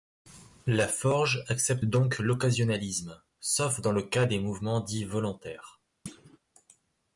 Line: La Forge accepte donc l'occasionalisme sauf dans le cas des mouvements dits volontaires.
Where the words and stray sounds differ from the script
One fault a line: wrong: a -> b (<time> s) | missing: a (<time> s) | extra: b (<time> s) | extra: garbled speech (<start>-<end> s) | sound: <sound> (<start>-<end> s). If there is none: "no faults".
sound: thud (6.1-6.4 s)